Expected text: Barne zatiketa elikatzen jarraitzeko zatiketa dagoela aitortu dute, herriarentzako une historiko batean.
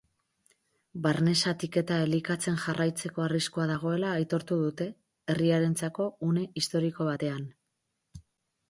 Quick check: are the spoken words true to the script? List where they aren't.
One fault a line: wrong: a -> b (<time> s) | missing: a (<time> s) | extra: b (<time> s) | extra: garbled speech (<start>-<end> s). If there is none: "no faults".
wrong: zatiketa -> arriskua (3.3 s)